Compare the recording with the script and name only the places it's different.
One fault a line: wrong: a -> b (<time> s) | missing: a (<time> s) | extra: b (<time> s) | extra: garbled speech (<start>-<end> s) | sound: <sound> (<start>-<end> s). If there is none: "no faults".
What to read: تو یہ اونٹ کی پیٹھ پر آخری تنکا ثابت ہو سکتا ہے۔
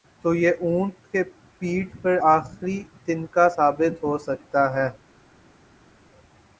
no faults